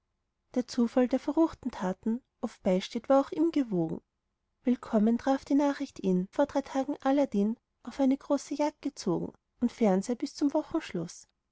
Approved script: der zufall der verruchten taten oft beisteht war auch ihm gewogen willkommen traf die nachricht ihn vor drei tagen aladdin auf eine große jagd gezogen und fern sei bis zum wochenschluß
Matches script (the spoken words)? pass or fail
pass